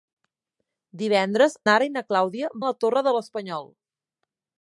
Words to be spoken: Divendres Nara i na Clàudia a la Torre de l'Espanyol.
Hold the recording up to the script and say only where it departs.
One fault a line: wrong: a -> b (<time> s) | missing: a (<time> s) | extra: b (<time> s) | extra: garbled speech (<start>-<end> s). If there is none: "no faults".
no faults